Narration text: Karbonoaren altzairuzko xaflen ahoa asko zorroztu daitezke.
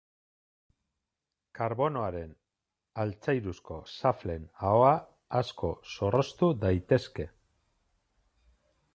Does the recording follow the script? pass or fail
pass